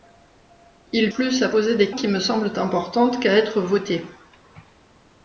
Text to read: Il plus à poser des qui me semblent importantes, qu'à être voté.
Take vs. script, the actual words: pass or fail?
pass